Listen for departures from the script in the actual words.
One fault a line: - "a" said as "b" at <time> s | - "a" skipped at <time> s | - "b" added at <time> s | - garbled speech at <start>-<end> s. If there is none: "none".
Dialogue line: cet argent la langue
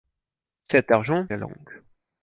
none